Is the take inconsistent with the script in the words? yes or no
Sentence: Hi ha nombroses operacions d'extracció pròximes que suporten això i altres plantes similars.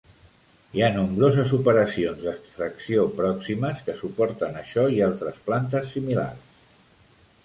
no